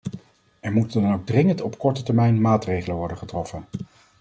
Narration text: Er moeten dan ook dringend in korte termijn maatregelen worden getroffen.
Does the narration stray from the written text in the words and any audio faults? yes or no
yes